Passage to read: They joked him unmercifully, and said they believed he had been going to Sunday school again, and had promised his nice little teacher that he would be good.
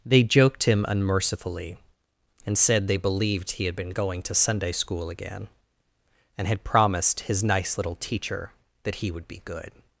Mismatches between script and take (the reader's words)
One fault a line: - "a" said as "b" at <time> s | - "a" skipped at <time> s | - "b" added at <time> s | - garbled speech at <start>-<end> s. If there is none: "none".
none